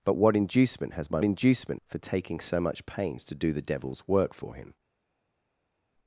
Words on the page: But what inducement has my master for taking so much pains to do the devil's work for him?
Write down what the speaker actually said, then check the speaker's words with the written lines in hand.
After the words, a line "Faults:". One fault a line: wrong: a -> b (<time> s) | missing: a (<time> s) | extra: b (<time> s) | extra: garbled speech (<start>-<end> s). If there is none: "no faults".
But what inducement has my inducement for taking so much pains to do the devil's work for him?
Faults:
wrong: master -> inducement (1.2 s)